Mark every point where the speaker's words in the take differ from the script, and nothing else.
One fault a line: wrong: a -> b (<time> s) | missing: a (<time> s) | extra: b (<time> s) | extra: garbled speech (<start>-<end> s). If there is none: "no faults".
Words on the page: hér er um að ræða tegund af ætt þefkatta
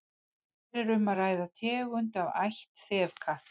no faults